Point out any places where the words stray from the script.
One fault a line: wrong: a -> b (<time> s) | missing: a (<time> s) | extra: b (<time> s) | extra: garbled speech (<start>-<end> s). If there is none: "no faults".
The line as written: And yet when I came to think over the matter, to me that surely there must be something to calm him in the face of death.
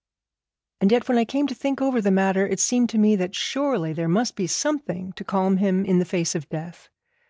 extra: it seemed (2.5 s)